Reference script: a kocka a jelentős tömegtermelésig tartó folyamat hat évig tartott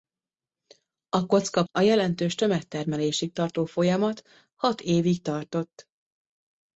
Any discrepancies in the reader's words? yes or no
no